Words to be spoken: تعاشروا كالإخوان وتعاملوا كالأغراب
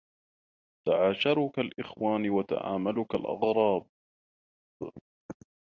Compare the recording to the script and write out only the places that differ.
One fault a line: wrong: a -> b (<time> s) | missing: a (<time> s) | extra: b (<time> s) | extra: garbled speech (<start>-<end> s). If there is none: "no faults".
no faults